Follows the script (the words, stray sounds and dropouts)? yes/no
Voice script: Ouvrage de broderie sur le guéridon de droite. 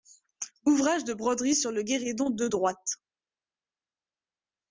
yes